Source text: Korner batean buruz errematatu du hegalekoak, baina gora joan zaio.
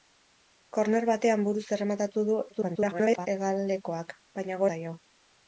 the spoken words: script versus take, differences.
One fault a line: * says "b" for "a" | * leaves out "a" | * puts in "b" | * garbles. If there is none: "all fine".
* garbles
* leaves out "gora joan"